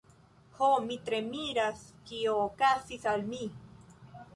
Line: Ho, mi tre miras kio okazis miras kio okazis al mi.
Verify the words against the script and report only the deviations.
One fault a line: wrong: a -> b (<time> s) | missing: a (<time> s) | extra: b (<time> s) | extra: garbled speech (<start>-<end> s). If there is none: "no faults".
missing: miras kio okazis (3.1 s)